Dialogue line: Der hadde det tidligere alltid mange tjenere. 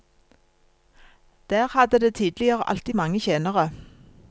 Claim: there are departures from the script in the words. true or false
false